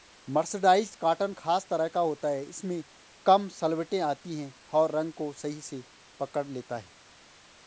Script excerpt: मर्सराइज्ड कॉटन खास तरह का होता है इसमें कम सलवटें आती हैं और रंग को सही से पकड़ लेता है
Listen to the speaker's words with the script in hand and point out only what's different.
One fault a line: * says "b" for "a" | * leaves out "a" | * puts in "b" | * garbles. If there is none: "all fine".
all fine